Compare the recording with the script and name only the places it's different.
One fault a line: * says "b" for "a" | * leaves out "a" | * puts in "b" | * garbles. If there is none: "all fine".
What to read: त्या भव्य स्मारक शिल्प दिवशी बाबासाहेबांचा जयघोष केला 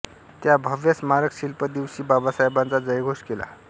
all fine